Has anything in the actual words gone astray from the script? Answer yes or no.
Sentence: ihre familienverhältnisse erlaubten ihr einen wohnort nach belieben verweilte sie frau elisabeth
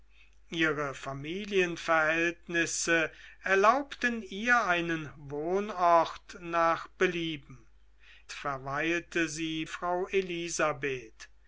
no